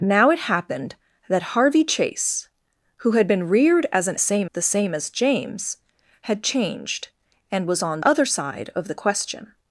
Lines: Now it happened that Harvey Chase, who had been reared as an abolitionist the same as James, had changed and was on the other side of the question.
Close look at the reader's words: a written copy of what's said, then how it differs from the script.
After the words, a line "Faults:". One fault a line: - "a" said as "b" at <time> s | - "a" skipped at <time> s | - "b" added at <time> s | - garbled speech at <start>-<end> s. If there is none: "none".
Now it happened that Harvey Chase, who had been reared as an same the same as James, had changed and was on other side of the question.
Faults:
- "abolitionist" said as "same" at 4.2 s
- "the" skipped at 8.0 s